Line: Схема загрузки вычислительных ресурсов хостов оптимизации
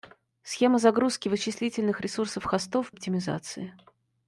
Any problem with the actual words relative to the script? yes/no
no